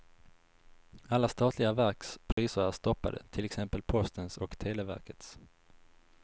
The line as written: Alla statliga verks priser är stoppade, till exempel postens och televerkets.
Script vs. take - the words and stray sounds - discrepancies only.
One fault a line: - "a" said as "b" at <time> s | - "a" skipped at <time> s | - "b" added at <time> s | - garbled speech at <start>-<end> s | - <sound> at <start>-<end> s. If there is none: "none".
- dropout at 2.3-2.4 s